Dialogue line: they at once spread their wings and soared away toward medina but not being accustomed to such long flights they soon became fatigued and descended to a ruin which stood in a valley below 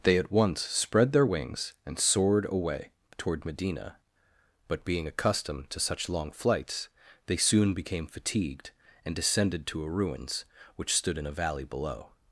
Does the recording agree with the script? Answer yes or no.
no